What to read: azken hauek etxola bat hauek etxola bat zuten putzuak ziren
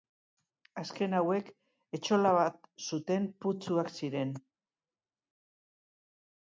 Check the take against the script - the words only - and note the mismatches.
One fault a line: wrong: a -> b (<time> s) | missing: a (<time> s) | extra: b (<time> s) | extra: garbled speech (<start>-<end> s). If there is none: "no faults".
missing: hauek etxola bat (2.7 s)